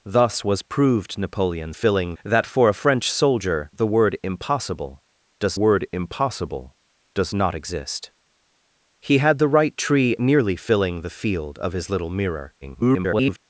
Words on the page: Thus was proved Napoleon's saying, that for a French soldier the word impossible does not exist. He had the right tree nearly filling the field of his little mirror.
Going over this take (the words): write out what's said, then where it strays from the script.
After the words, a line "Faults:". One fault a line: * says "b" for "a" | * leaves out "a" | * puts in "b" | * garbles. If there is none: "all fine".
Thus was proved Napoleon's filling, that for a French soldier the word impossible does word impossible does not exist. He had the right tree nearly filling the field of his little mirror. [garbled]
Faults:
* says "filling" for "saying"
* puts in "word impossible does"
* garbles